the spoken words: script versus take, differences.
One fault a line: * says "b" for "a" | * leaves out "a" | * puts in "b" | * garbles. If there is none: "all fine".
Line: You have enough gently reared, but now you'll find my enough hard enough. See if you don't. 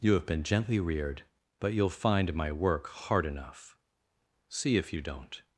* says "been" for "enough"
* leaves out "now"
* says "work" for "enough"